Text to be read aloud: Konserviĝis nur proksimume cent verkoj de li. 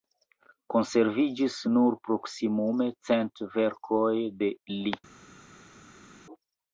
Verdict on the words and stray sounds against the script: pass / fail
pass